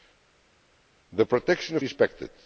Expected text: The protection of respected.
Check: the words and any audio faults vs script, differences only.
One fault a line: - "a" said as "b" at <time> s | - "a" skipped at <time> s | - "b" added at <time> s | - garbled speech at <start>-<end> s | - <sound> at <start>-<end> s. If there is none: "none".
none